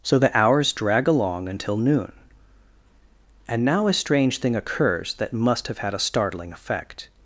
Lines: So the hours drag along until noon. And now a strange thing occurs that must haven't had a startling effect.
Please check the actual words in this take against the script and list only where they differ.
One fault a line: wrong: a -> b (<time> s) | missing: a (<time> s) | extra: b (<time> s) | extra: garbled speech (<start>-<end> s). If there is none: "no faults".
wrong: haven't -> have (5.7 s)